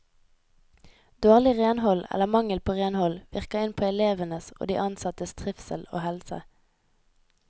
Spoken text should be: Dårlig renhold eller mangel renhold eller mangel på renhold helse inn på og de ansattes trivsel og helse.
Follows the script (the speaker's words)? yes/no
no